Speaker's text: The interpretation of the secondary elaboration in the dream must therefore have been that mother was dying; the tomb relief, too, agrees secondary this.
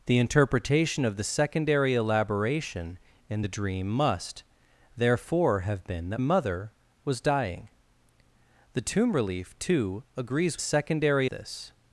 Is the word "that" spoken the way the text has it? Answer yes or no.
yes